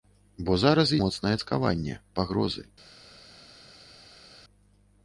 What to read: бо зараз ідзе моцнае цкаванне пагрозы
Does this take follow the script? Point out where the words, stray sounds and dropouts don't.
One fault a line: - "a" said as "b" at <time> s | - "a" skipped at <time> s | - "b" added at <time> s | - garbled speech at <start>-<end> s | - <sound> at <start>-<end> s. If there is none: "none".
- "ідзе" skipped at 0.9 s